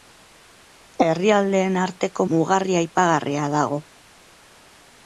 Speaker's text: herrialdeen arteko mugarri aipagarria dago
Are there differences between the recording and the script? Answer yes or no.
no